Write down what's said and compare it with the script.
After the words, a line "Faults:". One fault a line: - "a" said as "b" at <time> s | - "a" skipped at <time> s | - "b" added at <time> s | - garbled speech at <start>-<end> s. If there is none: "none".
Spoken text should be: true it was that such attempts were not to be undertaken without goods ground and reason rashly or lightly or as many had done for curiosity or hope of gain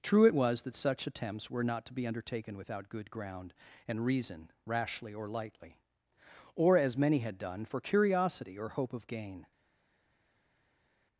true it was that such attempts were not to be undertaken without good ground and reason rashly or lightly or as many had done for curiosity or hope of gain
Faults:
- "goods" said as "good" at 2.9 s